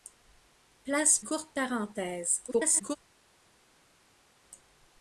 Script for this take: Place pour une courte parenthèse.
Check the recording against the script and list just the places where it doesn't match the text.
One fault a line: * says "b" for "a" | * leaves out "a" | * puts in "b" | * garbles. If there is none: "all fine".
* leaves out "pour une"
* garbles